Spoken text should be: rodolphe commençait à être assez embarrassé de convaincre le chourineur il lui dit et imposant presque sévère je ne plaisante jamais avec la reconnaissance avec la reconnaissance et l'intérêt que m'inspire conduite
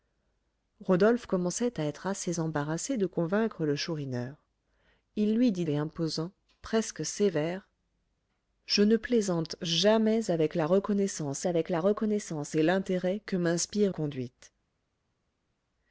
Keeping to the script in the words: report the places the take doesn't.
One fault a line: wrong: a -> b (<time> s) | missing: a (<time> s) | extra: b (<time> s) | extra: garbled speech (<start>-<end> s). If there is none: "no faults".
no faults